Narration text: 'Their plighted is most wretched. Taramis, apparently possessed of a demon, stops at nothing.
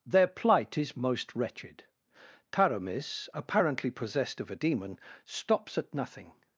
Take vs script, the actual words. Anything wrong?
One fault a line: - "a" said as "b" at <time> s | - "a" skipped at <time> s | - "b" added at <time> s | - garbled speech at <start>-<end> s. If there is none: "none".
- "plighted" said as "plight" at 0.3 s